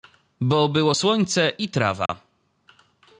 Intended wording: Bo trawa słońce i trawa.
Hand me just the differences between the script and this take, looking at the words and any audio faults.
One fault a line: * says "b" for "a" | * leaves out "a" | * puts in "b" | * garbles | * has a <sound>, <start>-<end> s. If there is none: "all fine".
* says "było" for "trawa"
* has a dropout, 2.1-2.1 s